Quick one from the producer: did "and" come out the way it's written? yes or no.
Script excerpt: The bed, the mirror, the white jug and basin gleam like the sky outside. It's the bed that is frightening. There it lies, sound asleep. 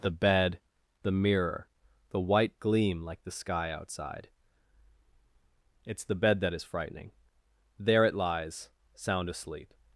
no